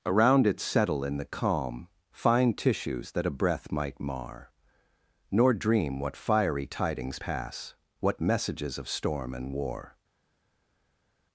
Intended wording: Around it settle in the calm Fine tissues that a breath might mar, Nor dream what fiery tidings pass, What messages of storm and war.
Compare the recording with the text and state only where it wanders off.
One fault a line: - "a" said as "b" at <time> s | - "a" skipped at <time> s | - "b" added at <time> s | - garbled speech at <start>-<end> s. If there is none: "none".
none